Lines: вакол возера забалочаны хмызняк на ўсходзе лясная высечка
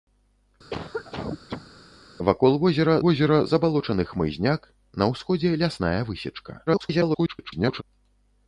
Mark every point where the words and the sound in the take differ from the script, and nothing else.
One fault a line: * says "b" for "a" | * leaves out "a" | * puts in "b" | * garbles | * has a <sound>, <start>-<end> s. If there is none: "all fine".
* has a cough, 0.7-1.7 s
* puts in "возера"
* garbles